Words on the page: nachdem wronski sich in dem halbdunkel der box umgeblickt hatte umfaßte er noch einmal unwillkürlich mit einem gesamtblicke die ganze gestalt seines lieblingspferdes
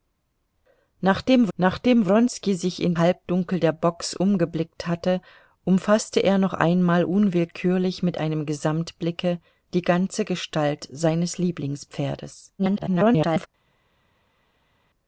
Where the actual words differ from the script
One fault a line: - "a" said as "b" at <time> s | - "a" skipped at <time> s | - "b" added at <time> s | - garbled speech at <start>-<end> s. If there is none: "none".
- "nachdem" added at 1.6 s
- "dem" skipped at 3.0 s
- garbled speech at 12.6-13.5 s